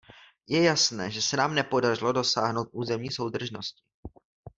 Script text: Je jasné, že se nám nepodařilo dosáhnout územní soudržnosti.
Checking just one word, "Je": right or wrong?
right